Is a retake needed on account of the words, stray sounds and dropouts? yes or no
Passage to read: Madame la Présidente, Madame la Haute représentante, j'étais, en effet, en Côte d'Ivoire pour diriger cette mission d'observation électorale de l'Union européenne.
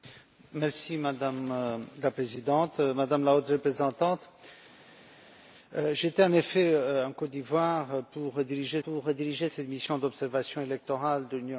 yes